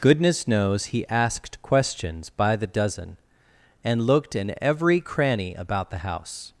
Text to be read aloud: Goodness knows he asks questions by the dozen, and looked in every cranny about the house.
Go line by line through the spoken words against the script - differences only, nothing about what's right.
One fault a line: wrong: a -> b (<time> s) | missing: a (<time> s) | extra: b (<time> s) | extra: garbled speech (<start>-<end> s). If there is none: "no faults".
wrong: asks -> asked (1.1 s)